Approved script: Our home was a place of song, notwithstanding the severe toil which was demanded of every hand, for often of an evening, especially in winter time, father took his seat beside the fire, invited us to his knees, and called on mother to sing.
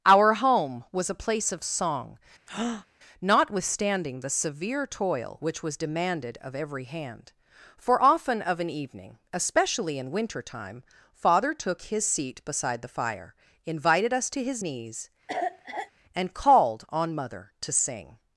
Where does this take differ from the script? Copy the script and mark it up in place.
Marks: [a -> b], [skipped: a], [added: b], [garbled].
Our home was a place of song, notwithstanding the severe toil which was demanded of every hand, for often of an evening, especially in winter time, father took his seat beside the fire, invited us to his knees, and called on mother to sing.